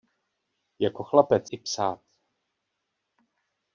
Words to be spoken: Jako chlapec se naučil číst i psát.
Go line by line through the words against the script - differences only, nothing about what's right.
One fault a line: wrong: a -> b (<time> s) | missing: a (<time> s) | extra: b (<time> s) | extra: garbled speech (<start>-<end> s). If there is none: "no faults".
missing: se naučil číst (1.5 s)